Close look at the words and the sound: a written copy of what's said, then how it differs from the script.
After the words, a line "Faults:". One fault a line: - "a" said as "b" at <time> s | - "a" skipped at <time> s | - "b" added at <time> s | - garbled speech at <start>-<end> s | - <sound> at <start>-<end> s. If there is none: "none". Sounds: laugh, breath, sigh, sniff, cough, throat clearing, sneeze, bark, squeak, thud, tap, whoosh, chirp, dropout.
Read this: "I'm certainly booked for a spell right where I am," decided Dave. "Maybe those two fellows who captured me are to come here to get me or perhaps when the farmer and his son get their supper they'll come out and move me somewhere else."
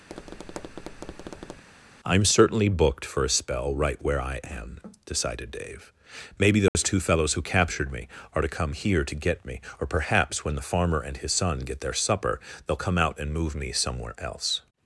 "I'm certainly booked for a spell right where I am," decided Dave. "Maybe those two fellows who captured me are to come here to get me or perhaps when the farmer and his son get their supper they'll come out and move me somewhere else."
Faults:
- tap at 0.1-1.6 s
- dropout at 6.7-6.7 s